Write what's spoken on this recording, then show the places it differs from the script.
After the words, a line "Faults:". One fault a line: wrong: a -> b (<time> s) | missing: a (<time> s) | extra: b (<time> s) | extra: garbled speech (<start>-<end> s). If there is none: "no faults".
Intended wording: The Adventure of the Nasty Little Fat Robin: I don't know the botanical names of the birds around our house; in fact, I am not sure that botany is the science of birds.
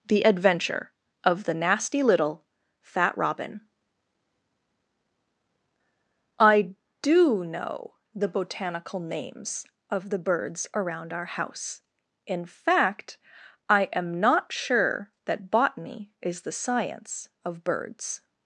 The Adventure of the Nasty Little Fat Robin: I do know the botanical names of the birds around our house; in fact, I am not sure that botany is the science of birds.
Faults:
wrong: don't -> do (7.0 s)